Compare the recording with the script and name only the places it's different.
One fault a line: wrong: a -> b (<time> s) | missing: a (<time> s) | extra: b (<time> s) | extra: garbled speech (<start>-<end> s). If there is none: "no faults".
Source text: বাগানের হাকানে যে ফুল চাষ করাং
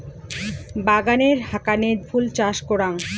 missing: যে (1.9 s)